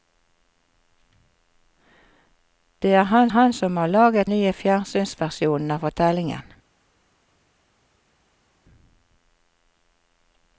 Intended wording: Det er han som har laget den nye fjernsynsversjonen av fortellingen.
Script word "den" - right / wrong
wrong